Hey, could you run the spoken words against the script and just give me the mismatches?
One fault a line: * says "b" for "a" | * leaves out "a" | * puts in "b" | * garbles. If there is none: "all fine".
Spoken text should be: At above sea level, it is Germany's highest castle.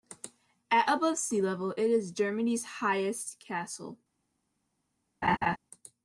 all fine